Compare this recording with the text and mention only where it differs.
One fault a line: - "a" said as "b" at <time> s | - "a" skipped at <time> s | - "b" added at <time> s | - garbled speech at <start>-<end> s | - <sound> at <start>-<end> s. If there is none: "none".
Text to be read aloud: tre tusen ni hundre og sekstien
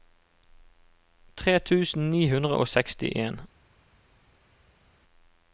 none